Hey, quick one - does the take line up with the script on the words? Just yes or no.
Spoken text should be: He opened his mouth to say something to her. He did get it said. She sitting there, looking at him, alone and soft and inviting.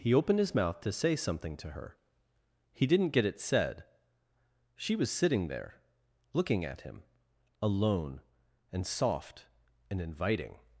no